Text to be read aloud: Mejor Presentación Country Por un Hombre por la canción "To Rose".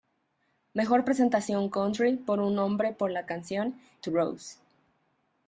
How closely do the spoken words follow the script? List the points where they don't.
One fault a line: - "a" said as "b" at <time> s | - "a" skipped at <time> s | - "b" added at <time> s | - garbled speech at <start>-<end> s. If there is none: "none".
none